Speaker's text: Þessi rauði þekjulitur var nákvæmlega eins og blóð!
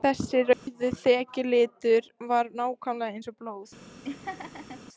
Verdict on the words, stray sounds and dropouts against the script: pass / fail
fail